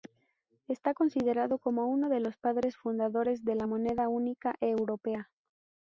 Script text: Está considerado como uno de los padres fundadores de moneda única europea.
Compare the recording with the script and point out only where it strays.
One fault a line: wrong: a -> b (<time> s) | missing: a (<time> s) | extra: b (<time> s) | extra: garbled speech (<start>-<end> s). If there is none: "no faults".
extra: la (3.5 s)